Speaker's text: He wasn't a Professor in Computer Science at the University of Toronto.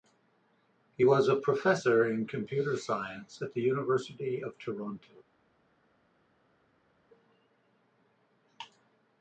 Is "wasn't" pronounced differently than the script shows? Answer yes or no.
yes